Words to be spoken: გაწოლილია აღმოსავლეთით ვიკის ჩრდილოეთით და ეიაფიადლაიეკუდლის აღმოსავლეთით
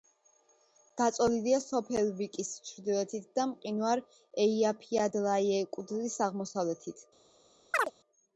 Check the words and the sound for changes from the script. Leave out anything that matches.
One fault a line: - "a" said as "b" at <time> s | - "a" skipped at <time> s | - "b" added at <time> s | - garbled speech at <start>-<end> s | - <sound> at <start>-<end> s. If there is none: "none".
- "აღმოსავლეთით" said as "სოფელ" at 1.6 s
- "მყინვარ" added at 3.5 s
- chirp at 7.7-7.9 s